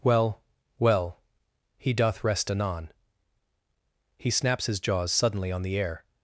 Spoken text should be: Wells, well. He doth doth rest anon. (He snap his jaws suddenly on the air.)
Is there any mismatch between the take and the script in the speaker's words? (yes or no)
yes